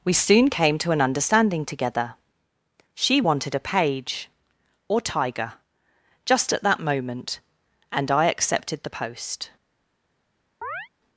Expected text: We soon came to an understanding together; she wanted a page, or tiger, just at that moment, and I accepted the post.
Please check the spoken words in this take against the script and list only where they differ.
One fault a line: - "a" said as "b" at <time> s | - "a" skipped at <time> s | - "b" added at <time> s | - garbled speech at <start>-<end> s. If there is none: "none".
none